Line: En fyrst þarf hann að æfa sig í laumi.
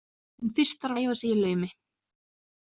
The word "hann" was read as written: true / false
false